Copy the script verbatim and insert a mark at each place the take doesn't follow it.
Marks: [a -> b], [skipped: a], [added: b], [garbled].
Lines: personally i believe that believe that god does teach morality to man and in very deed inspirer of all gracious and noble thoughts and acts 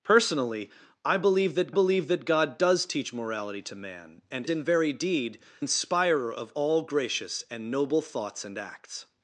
personally i believe that believe that god does teach morality to man and in very deed inspirer of all gracious and noble thoughts and acts